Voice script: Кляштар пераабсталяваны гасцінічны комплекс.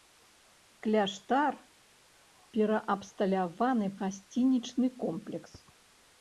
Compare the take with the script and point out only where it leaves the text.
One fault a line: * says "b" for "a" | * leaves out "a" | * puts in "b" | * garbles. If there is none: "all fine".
all fine